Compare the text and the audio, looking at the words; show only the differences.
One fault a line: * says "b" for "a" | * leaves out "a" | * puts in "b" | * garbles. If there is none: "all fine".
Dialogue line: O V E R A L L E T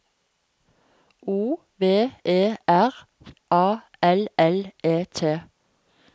all fine